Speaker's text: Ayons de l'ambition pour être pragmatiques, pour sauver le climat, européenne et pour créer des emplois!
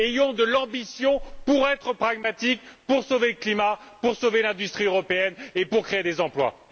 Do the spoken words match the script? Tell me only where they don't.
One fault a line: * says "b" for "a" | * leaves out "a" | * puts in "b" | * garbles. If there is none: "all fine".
* puts in "pour sauver l'industrie"